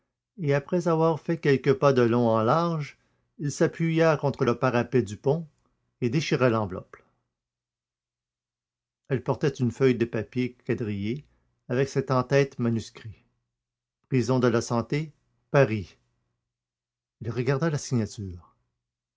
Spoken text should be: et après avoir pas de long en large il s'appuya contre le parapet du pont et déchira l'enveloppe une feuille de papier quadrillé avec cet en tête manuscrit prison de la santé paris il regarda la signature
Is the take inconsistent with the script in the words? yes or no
yes